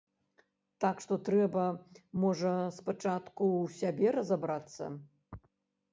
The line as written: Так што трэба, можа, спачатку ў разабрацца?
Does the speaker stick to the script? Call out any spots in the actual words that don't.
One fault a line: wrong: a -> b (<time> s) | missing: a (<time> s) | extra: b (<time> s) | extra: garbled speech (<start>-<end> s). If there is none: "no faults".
extra: сябе (3.8 s)